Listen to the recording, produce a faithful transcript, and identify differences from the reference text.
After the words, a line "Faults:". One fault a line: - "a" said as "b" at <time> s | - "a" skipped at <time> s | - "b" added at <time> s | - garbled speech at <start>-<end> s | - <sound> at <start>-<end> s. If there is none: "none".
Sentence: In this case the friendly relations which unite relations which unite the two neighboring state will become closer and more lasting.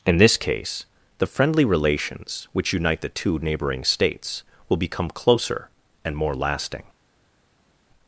In this case the friendly relations which unite the two neighboring states will become closer and more lasting.
Faults:
- "relations which unite" skipped at 3.0 s
- "state" said as "states" at 3.8 s